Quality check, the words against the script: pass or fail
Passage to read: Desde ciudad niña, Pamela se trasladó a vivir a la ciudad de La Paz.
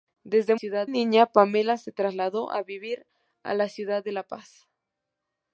pass